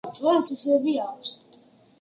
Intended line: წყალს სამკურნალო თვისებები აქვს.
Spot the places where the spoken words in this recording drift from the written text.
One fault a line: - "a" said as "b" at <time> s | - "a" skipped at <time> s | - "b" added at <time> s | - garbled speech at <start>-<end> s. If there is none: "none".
- "სამკურნალო" skipped at 0.5 s